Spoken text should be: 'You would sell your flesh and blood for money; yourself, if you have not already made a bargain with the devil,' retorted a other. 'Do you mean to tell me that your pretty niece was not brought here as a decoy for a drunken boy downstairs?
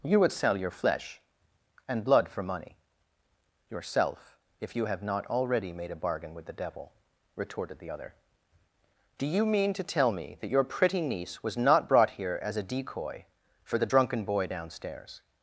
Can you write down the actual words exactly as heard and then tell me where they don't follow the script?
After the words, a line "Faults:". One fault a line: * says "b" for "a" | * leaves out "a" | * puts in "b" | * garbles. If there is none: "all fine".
'You would sell your flesh and blood for money; yourself, if you have not already made a bargain with the devil,' retorted the other. 'Do you mean to tell me that your pretty niece was not brought here as a decoy for the drunken boy downstairs?
Faults:
* says "the" for "a"
* says "the" for "a"